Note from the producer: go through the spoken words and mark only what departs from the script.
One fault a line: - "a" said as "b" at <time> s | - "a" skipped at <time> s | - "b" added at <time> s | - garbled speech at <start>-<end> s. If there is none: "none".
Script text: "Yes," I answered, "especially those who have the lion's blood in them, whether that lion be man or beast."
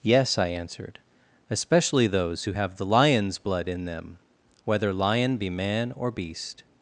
- "that" skipped at 4.9 s